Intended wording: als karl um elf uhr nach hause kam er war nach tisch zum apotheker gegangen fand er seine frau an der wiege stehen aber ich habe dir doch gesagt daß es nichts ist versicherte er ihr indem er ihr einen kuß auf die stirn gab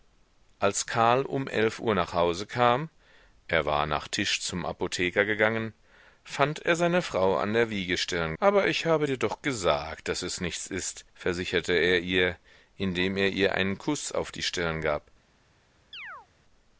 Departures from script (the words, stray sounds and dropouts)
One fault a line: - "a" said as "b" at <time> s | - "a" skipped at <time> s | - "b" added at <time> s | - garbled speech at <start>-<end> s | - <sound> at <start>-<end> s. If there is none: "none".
- "stehen" said as "stirn" at 8.0 s
- chirp at 15.9-16.3 s